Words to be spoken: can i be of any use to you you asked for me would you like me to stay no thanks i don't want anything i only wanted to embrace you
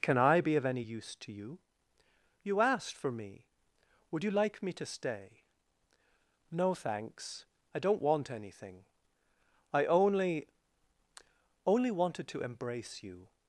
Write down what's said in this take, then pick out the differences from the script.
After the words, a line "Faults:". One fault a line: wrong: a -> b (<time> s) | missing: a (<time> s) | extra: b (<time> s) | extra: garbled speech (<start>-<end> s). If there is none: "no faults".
can i be of any use to you you asked for me would you like me to stay no thanks i don't want anything i only only wanted to embrace you
Faults:
extra: only (11.7 s)